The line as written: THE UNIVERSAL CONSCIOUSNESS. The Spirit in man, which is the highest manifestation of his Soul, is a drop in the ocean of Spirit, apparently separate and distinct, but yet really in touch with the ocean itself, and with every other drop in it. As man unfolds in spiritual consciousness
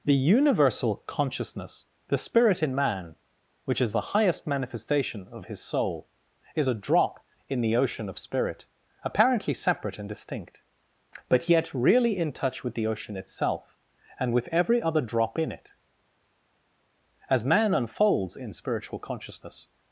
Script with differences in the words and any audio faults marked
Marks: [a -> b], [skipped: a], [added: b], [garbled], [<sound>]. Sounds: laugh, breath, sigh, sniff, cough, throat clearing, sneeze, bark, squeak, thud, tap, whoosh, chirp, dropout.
THE UNIVERSAL CONSCIOUSNESS. The Spirit in man, which is the highest manifestation of his Soul, is a drop in the ocean of Spirit, apparently separate and distinct, but yet really in touch with the ocean itself, and with every other drop in it. As man unfolds in spiritual consciousness